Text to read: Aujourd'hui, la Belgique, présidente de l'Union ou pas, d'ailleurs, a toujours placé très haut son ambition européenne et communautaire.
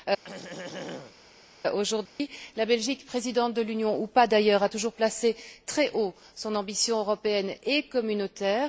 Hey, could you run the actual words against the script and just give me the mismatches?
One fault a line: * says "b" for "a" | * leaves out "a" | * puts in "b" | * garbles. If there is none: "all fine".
all fine